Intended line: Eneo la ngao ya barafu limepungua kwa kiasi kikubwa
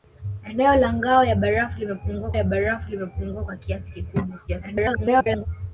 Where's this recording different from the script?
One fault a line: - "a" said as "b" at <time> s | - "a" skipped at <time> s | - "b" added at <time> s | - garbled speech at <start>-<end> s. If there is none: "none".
- "ya barafu limepungua" added at 2.3 s
- garbled speech at 4.5-5.5 s